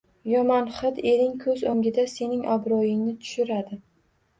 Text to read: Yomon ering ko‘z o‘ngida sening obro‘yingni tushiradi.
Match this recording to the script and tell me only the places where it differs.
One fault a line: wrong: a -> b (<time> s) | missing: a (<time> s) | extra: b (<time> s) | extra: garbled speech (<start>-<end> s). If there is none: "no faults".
extra: hid (0.8 s)